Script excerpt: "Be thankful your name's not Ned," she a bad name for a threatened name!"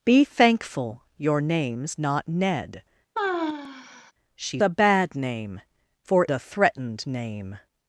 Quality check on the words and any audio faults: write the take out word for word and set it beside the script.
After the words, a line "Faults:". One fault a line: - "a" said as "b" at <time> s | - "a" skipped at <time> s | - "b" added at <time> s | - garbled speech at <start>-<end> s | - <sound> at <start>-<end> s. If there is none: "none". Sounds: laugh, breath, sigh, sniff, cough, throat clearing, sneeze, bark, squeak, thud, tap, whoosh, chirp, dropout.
"Be thankful your name's not Ned," she a bad name for a threatened name!"
Faults:
- sigh at 3.1-4.1 s